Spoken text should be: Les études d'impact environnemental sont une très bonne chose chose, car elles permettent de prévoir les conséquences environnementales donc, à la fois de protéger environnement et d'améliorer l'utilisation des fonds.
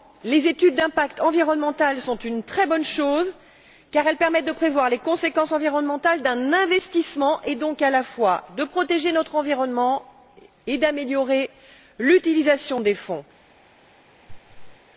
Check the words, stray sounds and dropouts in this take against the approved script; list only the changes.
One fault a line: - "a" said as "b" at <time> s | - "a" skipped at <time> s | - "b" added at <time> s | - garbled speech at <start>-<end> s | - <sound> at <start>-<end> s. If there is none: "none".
- "chose" skipped at 3.3 s
- "d'un investissement et" added at 6.2 s
- "notre" added at 9.1 s
- laugh at 14.3-14.8 s